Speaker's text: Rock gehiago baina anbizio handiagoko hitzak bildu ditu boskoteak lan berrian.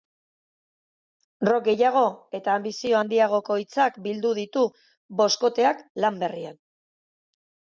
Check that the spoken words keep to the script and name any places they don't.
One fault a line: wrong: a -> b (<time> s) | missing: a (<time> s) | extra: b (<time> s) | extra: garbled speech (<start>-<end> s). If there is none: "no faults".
wrong: baina -> eta (2.4 s)